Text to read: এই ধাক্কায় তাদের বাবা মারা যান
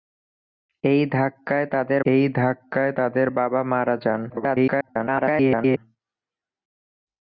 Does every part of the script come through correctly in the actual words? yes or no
no